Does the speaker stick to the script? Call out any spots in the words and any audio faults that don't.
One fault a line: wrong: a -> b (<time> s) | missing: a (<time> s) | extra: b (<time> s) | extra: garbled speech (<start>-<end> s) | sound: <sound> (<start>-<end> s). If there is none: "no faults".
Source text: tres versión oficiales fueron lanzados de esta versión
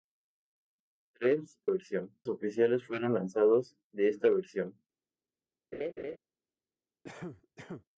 sound: laugh (5.7-6.2 s)
sound: cough (7.0-7.9 s)